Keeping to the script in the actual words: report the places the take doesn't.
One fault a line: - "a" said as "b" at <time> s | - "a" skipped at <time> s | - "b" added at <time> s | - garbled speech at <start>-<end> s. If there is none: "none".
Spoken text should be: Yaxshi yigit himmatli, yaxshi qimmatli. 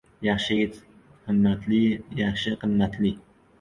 none